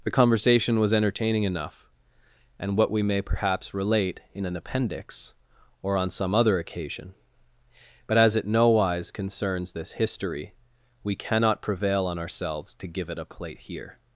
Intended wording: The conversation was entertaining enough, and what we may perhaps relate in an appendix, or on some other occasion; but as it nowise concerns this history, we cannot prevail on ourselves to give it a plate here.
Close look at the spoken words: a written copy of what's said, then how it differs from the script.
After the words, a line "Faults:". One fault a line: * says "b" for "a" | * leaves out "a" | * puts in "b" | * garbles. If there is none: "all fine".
The conversation was entertaining enough, and what we may perhaps relate in an appendix, or on some other occasion; but as it nowise concerns this history, we cannot prevail on ourselves to give it a plate here.
Faults:
all fine